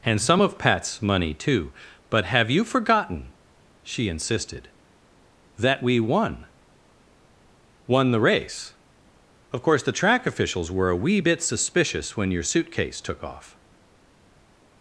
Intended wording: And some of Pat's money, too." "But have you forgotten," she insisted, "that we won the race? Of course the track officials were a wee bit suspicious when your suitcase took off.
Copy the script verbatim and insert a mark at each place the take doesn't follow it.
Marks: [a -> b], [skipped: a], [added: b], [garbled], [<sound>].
And some of Pat's money, too." "But have you forgotten," she insisted, "that we won [added: won] the race? Of course the track officials were a wee bit suspicious when your suitcase took off.